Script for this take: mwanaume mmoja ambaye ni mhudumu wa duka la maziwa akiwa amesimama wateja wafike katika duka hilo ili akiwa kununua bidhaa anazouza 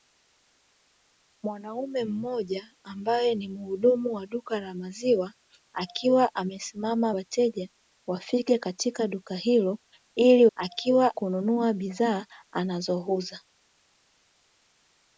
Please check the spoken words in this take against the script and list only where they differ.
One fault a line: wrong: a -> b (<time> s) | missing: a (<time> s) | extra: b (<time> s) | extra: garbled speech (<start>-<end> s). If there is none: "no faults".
no faults